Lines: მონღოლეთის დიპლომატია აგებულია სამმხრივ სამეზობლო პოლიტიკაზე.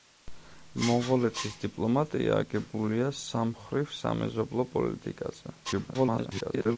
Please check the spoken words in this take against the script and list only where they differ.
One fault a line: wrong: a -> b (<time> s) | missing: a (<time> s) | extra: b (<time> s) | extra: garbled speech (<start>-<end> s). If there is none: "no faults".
extra: garbled speech (5.6-6.8 s)